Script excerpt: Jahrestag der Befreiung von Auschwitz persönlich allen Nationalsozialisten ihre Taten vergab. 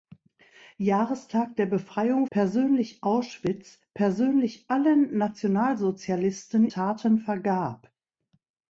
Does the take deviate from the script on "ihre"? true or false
true